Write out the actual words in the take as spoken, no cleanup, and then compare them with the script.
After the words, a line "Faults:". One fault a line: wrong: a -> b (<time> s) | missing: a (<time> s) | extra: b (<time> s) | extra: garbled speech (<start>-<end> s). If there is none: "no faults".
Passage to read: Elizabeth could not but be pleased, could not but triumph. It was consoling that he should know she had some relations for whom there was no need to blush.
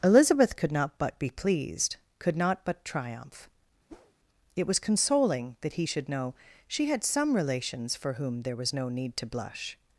Elizabeth could not but be pleased, could not but triumph. It was consoling that he should know she had some relations for whom there was no need to blush.
Faults:
no faults